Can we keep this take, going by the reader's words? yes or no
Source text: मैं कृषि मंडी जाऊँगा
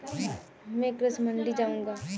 yes